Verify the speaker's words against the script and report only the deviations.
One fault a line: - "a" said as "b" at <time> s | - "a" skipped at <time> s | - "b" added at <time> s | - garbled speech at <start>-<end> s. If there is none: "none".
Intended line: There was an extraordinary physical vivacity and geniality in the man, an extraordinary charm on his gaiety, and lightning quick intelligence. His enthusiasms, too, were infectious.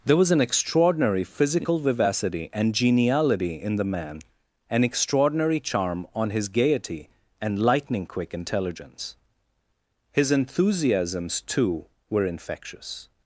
none